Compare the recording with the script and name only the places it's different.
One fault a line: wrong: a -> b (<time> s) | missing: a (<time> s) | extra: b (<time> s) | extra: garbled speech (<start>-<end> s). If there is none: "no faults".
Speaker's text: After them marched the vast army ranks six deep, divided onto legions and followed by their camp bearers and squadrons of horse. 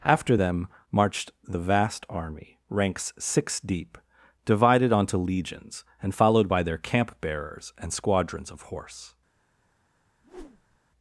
no faults